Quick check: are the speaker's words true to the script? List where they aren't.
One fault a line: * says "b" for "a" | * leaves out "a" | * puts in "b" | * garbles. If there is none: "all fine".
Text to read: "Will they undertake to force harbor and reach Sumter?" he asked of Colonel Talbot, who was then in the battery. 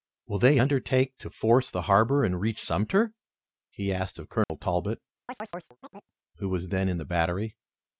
* puts in "the"